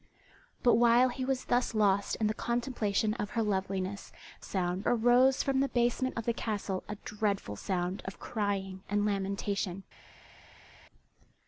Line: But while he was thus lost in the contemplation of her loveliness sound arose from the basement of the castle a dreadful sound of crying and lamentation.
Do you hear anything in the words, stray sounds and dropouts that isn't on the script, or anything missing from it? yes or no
no